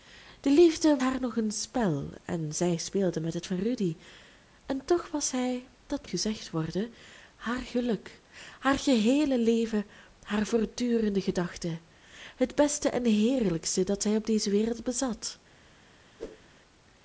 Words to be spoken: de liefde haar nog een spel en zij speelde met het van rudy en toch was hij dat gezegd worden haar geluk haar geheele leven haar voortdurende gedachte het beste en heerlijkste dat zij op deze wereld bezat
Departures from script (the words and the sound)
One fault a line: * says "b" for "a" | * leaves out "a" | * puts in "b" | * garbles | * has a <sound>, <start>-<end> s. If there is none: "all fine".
* has a whoosh, 16.2-16.5 s